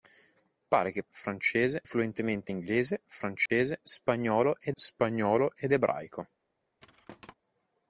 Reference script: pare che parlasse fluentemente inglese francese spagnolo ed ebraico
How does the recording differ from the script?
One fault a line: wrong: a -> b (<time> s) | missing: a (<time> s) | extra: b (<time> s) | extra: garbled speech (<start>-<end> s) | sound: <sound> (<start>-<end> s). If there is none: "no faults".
wrong: parlasse -> francese (1.1 s)
sound: dropout (3.5-3.5 s)
extra: spagnolo ed (4.7 s)
sound: thud (6.8-7.3 s)